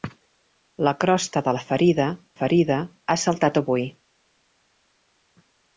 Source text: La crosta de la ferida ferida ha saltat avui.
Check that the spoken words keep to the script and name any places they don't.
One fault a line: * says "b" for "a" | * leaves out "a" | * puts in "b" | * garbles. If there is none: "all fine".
all fine